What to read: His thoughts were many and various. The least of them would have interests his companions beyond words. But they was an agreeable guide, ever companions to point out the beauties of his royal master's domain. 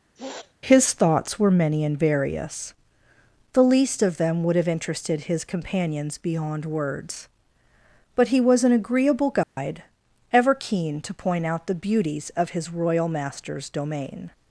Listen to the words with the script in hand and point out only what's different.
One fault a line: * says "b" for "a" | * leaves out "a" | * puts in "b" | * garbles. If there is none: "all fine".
* says "interested" for "interests"
* says "he" for "they"
* says "keen" for "companions"